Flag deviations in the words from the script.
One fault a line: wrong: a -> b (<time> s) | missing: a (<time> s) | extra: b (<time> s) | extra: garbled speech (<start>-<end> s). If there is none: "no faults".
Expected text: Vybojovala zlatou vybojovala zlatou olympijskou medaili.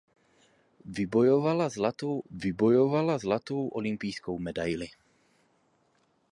no faults